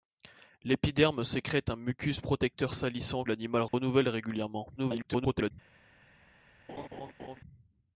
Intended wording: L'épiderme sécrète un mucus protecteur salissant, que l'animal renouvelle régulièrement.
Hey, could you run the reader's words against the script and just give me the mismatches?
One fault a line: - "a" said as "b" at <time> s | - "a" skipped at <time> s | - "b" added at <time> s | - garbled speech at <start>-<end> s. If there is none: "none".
- "que" skipped at 3.2 s
- garbled speech at 4.8-5.5 s